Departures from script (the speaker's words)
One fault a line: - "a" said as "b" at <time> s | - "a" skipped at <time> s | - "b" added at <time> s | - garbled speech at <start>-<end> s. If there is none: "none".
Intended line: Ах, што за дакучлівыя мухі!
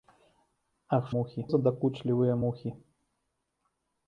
- "што" said as "мухі" at 1.2 s